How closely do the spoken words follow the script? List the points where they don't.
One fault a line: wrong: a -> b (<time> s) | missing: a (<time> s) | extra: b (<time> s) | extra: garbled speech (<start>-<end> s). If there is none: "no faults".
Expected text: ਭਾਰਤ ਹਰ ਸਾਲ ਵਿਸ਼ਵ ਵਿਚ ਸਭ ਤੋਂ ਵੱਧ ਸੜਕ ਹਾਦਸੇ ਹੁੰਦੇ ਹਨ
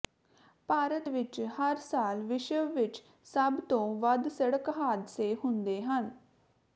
extra: ਵਿਚ (1.1 s)